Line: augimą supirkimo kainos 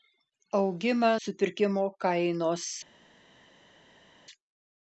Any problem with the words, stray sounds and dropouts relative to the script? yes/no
no